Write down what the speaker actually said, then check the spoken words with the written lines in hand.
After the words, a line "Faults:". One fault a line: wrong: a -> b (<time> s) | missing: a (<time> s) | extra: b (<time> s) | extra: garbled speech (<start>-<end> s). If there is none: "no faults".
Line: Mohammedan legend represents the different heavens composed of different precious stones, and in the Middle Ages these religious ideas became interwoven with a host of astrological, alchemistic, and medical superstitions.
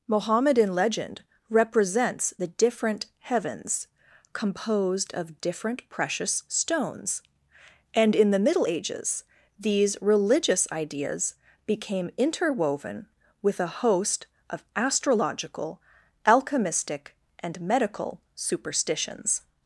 Mohammedan legend represents the different heavens composed of different precious stones, and in the Middle Ages these religious ideas became interwoven with a host of astrological, alchemistic, and medical superstitions.
Faults:
no faults